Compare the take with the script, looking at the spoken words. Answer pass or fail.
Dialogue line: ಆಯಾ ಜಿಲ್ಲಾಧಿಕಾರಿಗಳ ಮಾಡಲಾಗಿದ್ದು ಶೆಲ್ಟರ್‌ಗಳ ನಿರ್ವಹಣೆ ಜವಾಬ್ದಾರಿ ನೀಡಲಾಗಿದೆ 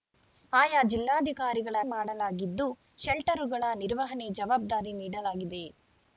pass